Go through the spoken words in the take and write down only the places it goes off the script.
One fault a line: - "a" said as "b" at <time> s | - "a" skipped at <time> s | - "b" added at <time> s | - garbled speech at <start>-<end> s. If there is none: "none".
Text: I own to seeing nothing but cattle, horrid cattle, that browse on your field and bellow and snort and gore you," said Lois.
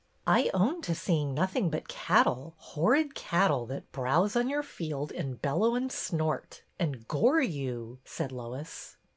none